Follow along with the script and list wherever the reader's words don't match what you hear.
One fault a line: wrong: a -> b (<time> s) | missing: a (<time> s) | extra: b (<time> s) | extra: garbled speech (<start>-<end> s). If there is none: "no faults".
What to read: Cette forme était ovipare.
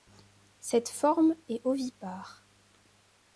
wrong: était -> est (1.5 s)